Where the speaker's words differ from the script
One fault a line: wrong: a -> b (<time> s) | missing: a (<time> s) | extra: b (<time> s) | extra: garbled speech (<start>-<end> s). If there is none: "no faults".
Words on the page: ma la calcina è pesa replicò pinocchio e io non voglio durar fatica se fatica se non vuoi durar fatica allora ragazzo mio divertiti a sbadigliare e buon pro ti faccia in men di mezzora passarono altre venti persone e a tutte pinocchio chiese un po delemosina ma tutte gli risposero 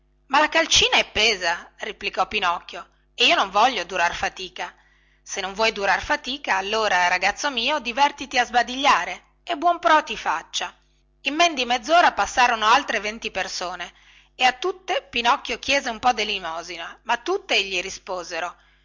missing: fatica se (5.4 s)